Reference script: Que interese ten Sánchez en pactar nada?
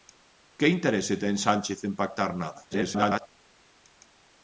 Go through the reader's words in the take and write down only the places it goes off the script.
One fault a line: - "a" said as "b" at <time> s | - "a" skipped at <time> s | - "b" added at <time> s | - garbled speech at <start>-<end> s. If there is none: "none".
- garbled speech at 2.7-3.3 s